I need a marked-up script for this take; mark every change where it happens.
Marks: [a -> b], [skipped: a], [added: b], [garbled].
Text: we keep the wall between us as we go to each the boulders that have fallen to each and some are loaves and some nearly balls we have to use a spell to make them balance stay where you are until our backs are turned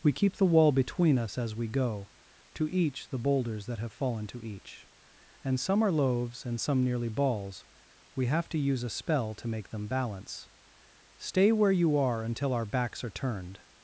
we keep the wall between us as we go to each the boulders that have fallen to each and some are loaves and some nearly balls we have to use a spell to make them balance stay where you are until our backs are turned